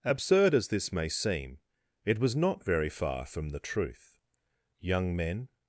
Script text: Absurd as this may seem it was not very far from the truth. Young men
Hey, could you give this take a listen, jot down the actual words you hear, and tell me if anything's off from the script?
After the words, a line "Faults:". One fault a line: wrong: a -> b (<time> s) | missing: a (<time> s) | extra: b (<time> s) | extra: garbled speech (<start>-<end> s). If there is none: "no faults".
Absurd as this may seem it was not very far from the truth. Young men
Faults:
no faults